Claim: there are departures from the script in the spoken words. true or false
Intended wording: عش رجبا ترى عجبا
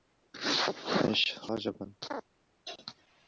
true